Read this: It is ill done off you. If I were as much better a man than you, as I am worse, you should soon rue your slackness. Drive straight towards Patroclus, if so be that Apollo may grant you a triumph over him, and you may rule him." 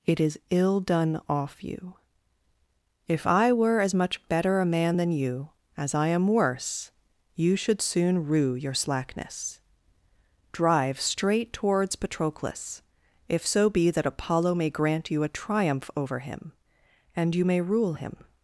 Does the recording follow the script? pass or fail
pass